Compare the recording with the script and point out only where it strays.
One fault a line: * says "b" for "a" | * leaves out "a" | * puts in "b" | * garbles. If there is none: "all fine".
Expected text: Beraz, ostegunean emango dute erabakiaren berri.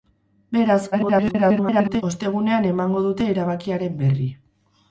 * garbles